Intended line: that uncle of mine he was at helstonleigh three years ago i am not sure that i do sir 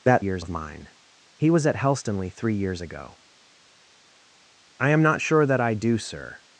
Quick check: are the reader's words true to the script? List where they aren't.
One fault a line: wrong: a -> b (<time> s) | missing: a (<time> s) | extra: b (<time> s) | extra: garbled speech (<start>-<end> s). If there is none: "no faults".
wrong: uncle -> years (0.2 s)